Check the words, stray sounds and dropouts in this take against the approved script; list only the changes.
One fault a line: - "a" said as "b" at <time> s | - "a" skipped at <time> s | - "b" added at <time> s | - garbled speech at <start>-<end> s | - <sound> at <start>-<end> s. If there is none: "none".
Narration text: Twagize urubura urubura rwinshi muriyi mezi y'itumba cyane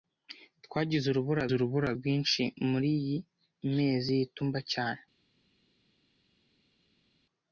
none